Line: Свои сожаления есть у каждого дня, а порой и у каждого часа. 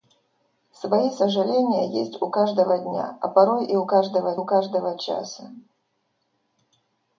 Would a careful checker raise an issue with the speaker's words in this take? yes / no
yes